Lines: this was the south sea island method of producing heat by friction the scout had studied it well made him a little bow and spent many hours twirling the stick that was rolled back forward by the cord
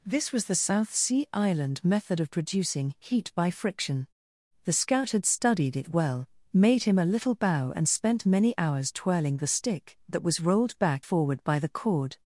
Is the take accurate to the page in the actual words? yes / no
yes